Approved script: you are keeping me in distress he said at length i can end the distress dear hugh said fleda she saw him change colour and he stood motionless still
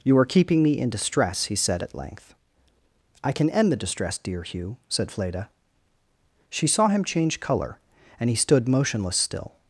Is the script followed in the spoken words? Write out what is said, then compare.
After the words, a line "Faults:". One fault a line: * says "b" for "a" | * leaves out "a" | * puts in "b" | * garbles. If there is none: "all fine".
you are keeping me in distress he said at length i can end the distress dear hugh said fleda she saw him change colour and he stood motionless still
Faults:
all fine